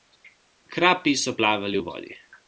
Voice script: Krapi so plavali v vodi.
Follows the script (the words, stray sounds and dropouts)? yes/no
yes